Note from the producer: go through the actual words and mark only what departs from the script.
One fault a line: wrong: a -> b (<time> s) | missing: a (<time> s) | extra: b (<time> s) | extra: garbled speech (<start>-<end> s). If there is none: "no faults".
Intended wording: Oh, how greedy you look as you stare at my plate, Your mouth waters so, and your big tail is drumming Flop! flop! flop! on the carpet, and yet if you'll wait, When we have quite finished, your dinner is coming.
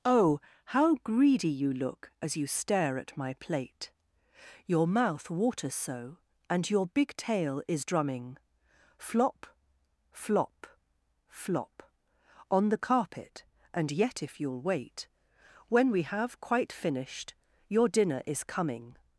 no faults